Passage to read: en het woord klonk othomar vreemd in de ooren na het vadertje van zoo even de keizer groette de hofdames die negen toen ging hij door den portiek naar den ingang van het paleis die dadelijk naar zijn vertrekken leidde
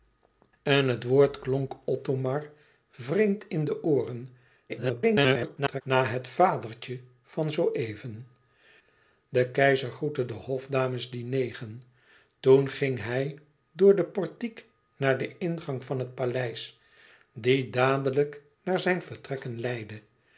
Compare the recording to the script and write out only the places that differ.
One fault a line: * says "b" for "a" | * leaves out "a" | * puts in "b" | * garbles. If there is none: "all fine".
* garbles